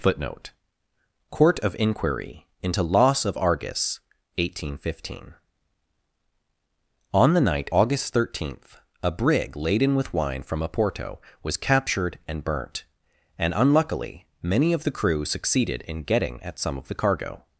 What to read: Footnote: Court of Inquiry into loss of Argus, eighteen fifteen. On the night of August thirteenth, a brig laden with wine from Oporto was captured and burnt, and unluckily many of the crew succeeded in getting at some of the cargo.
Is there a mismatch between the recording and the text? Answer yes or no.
yes